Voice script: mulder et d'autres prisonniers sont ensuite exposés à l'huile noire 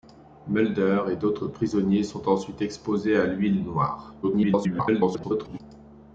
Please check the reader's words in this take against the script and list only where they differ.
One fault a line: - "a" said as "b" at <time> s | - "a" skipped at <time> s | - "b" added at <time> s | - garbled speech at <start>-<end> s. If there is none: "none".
- garbled speech at 4.2-5.6 s